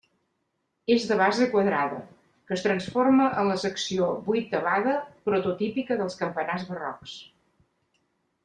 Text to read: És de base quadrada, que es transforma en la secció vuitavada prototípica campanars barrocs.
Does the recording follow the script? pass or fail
fail